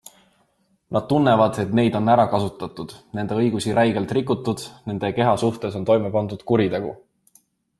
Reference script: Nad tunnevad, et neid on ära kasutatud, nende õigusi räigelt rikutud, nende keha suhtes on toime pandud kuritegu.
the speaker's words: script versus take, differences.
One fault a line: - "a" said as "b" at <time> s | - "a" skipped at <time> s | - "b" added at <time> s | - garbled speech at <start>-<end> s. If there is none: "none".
none